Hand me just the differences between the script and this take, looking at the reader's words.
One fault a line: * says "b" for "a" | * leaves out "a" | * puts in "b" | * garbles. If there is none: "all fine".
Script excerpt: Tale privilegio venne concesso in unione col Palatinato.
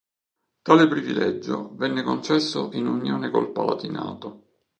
all fine